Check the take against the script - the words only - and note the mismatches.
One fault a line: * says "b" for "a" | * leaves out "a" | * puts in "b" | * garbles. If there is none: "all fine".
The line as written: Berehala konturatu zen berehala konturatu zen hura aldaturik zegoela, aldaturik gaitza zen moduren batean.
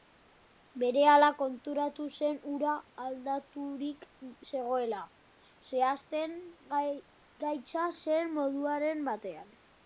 * leaves out "berehala konturatu zen"
* says "zehazten" for "aldaturik"